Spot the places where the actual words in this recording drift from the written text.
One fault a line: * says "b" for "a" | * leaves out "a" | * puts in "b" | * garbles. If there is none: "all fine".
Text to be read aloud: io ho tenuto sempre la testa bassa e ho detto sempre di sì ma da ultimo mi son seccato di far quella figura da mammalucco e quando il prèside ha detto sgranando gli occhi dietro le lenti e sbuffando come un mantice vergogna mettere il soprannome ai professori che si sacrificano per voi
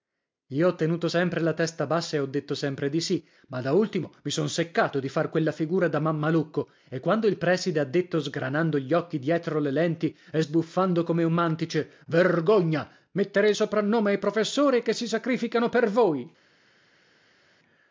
all fine